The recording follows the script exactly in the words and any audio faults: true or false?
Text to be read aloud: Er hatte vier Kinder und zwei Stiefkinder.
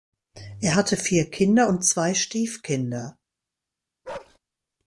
false